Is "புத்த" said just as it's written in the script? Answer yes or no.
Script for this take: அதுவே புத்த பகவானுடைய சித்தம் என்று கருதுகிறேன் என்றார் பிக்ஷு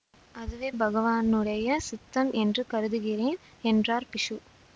no